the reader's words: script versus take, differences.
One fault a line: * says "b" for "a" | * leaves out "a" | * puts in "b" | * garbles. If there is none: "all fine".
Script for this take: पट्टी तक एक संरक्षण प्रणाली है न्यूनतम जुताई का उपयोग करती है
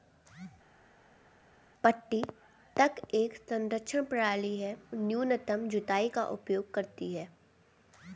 all fine